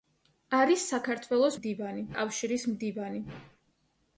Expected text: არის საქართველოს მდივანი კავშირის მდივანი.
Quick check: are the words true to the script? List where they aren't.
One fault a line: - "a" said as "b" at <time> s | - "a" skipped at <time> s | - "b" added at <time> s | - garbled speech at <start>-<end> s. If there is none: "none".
none